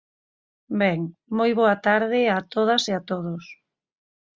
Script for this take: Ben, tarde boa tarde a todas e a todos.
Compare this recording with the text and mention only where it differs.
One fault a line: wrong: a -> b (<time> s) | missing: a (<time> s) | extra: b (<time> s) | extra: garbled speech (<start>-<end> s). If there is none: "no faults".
wrong: tarde -> moi (1.4 s)